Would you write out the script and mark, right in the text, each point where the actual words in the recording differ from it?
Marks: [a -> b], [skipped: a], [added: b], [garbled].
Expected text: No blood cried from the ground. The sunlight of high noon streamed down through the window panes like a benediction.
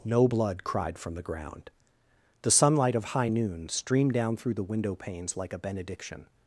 No blood cried from the ground. The sunlight of high noon streamed down through the window panes like a benediction.